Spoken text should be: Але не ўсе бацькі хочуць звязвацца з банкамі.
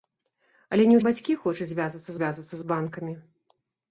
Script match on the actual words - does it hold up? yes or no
no